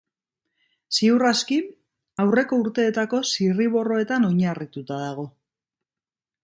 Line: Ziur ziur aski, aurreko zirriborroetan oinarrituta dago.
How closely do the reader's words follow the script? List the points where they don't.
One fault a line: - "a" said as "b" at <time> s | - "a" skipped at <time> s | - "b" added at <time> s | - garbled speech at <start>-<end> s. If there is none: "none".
- "ziur" skipped at 1.2 s
- "urteetako" added at 2.6 s